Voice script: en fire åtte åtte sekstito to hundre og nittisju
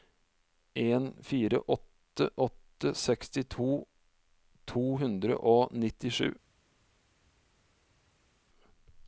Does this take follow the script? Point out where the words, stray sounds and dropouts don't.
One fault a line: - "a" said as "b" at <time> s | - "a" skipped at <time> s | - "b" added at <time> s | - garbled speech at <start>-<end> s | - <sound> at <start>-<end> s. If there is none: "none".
none